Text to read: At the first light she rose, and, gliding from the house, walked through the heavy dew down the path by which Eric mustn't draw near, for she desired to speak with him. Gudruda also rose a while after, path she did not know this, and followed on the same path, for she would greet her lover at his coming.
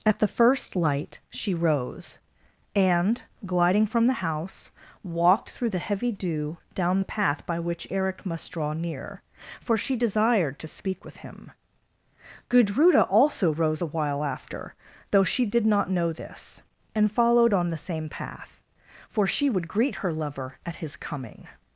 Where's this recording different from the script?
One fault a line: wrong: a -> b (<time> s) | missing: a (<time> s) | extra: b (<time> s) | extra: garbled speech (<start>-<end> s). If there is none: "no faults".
wrong: mustn't -> must (8.2 s)
wrong: path -> though (15.1 s)